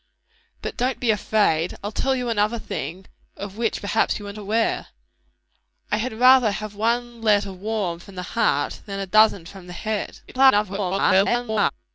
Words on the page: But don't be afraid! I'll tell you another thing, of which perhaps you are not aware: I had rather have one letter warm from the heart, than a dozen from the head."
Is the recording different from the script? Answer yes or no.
yes